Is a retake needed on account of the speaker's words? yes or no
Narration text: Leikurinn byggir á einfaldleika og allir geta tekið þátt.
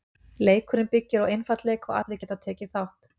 no